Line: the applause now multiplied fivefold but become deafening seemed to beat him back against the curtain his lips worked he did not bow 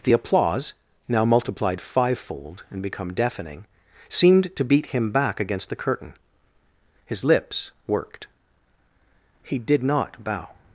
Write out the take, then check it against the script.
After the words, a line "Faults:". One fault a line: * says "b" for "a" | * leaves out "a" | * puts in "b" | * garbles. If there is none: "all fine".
the applause now multiplied fivefold and become deafening seemed to beat him back against the curtain his lips worked he did not bow
Faults:
* says "and" for "but"